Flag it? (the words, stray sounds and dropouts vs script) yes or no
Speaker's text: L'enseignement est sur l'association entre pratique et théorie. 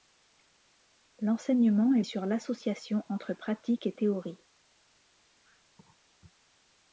no